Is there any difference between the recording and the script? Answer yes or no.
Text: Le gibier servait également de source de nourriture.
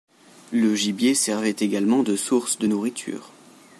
no